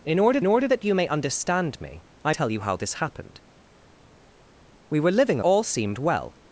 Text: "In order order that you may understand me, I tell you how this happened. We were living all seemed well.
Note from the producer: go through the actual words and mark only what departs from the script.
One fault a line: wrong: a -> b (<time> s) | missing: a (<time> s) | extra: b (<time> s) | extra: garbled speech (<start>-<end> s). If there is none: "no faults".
no faults